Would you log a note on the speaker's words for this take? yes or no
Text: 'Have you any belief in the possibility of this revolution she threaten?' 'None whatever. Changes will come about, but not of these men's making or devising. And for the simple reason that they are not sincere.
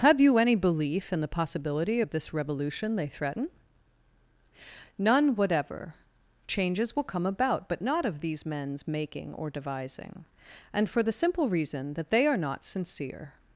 yes